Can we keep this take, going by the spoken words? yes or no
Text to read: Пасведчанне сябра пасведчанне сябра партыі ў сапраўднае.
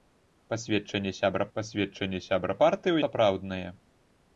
yes